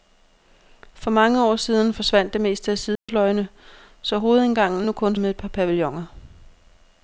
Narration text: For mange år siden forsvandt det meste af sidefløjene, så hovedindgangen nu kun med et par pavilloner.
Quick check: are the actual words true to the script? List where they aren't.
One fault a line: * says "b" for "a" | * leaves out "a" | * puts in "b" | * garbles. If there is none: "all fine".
all fine